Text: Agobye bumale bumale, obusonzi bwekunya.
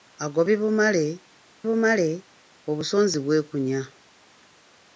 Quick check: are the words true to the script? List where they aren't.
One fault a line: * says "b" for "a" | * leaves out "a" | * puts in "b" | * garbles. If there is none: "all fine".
all fine